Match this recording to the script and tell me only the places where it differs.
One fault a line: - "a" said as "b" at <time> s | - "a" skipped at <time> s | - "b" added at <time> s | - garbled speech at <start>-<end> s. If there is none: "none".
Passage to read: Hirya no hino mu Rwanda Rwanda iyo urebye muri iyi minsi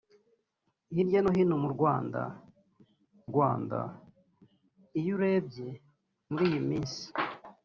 none